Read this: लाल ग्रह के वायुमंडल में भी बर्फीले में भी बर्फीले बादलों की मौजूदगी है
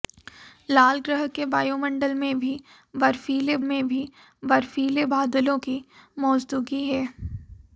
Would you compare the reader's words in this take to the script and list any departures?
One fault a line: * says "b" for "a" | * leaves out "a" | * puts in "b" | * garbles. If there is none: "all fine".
all fine